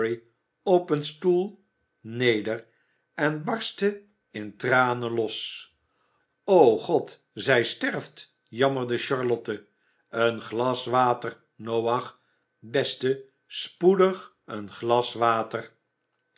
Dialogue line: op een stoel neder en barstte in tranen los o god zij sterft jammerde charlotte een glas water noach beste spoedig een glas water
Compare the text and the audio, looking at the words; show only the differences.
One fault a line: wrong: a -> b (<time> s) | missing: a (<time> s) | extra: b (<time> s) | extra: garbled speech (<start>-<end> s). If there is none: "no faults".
no faults